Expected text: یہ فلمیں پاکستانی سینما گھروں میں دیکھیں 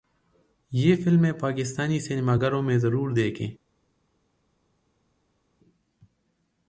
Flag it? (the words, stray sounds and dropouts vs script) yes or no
yes